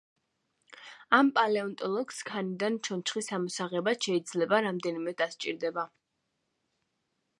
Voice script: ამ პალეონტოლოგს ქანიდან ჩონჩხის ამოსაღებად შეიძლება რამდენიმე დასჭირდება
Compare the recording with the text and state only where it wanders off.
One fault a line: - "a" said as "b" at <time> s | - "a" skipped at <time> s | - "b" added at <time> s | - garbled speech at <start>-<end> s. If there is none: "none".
none